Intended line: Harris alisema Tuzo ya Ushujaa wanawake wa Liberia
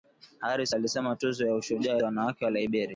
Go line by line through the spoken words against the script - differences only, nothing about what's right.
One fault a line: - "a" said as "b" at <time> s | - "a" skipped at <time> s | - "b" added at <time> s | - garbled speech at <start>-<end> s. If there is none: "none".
none